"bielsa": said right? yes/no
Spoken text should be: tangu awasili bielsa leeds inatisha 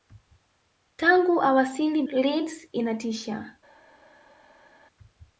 no